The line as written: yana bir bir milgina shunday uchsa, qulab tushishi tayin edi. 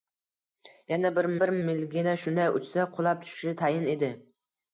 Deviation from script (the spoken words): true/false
false